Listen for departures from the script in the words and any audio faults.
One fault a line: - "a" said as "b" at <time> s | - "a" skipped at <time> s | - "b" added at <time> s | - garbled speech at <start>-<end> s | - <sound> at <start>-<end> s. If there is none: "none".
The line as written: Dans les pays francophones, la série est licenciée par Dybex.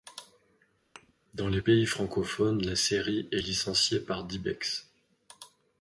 - thud at 1.0-1.1 s